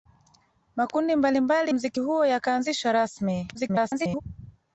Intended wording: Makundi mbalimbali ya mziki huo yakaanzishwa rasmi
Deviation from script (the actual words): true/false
true